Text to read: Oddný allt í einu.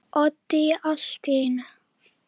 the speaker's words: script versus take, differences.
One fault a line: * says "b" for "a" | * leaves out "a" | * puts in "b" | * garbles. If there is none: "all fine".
all fine